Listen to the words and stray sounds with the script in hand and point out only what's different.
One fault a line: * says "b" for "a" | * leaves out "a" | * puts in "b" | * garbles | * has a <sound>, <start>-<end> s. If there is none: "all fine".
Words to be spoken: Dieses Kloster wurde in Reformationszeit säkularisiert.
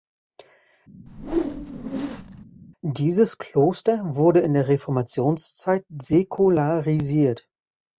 * has a whoosh, 1.1-2.4 s
* puts in "der"